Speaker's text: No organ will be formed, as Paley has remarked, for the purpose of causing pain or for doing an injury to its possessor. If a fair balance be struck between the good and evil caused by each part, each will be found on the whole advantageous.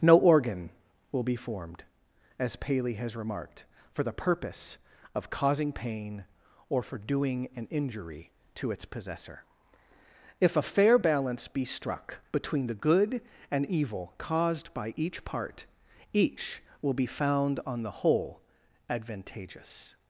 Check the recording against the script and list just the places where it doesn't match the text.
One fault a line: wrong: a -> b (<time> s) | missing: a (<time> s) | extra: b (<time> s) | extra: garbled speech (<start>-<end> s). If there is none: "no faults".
no faults